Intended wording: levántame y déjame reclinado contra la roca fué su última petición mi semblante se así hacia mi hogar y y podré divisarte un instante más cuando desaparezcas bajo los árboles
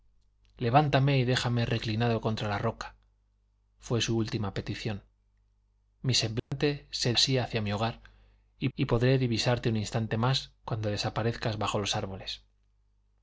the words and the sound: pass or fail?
fail